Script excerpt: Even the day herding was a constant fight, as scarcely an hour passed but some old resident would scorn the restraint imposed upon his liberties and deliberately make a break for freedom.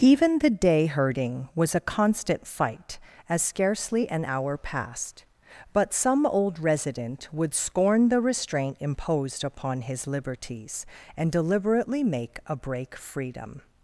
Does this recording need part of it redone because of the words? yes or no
yes